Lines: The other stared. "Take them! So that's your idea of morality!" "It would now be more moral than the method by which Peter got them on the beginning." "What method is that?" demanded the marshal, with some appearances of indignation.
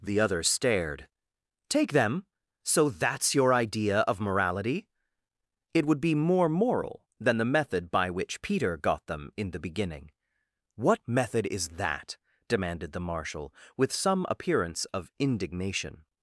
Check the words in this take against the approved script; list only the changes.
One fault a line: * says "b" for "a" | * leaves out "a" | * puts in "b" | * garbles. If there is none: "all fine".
* leaves out "now"
* says "in" for "on"
* says "appearance" for "appearances"